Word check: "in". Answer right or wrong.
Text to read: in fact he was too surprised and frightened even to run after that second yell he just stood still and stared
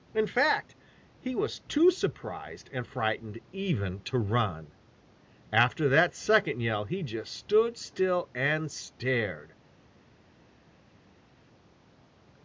right